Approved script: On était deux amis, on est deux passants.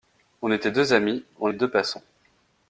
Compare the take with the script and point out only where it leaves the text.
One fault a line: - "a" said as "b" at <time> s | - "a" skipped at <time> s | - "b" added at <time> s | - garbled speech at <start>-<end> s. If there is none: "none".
- "est" skipped at 1.5 s